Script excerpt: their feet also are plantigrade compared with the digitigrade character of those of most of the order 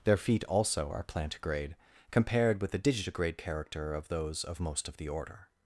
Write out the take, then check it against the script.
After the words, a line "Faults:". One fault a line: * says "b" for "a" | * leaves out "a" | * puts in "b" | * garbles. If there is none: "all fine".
their feet also are plantigrade compared with the digitigrade character of those of most of the order
Faults:
all fine